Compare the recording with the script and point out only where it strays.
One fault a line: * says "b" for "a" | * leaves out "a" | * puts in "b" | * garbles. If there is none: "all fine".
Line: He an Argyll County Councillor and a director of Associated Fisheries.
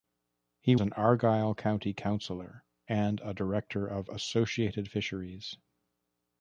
all fine